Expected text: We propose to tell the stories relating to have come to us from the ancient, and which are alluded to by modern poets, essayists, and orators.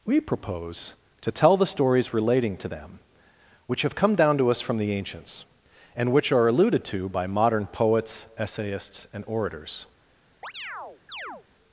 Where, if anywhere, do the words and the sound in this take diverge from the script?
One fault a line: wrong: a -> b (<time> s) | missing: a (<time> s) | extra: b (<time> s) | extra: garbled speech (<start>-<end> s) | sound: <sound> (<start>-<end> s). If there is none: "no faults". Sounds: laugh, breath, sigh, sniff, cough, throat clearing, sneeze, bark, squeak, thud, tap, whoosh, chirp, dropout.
extra: them which (2.7 s)
extra: down (4.1 s)
wrong: ancient -> ancients (4.9 s)
sound: chirp (10.4-11.5 s)